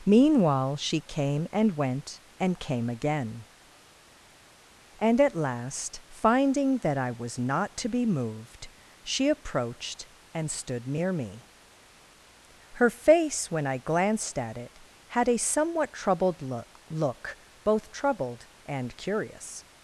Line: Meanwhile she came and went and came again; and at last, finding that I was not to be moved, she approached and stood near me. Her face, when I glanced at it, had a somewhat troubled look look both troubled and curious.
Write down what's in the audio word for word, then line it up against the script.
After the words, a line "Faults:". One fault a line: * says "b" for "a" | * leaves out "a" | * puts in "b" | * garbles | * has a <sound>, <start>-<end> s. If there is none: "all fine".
Meanwhile she came and went and came again; and at last, finding that I was not to be moved, she approached and stood near me. Her face, when I glanced at it, had a somewhat troubled look look both troubled and curious.
Faults:
all fine